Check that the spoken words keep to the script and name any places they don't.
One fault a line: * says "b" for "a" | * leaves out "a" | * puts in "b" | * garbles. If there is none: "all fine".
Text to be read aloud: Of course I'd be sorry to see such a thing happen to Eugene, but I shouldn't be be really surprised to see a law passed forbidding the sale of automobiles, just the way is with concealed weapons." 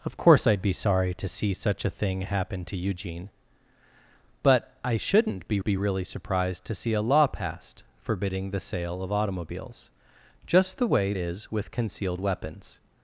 all fine